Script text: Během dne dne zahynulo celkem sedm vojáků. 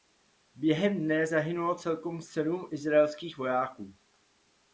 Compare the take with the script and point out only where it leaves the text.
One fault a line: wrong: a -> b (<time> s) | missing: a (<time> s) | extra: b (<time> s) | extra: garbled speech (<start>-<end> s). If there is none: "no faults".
missing: dne (1.3 s)
extra: izraelských (2.7 s)